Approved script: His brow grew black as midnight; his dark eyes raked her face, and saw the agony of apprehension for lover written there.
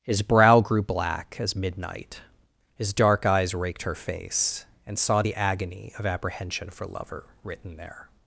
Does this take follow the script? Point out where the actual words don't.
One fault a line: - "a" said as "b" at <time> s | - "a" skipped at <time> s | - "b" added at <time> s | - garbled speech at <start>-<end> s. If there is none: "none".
none